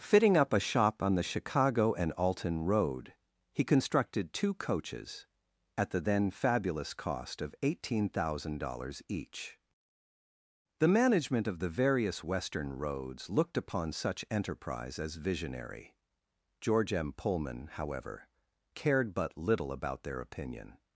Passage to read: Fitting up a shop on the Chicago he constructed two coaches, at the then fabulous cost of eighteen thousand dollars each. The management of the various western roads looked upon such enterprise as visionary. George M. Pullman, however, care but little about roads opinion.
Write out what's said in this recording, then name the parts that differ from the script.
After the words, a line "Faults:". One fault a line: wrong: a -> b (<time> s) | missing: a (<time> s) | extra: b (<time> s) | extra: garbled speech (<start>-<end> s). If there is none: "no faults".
Fitting up a shop on the Chicago and Alton road, he constructed two coaches, at the then fabulous cost of eighteen thousand dollars each. The management of the various western roads looked upon such enterprise as visionary. George M. Pullman, however, cared but little about their opinion.
Faults:
extra: and Alton road (1.9 s)
wrong: care -> cared (18.7 s)
wrong: roads -> their (20.0 s)